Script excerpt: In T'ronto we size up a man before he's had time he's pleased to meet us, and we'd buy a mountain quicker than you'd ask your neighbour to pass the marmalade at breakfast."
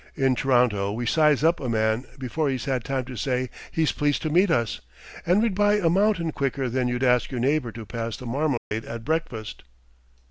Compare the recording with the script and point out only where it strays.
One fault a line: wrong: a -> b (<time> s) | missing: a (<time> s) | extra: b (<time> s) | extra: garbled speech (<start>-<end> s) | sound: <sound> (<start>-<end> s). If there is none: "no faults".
extra: to say (3.0 s)
sound: dropout (8.6-8.7 s)